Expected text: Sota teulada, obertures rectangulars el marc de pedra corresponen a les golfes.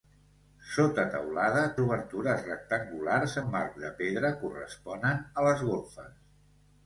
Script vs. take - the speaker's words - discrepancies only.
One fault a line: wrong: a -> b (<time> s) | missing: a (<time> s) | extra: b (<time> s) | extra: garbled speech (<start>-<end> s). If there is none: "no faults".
no faults